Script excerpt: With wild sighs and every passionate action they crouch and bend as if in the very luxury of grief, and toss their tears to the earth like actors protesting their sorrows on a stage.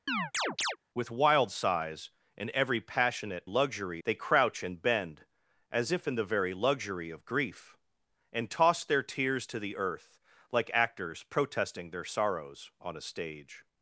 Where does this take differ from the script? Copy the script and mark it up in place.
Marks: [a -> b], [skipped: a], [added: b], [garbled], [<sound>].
[chirp] With wild sighs and every passionate [action -> luxury] they crouch and bend as if in the very luxury of grief, and toss their tears to the earth like actors protesting their sorrows on a stage.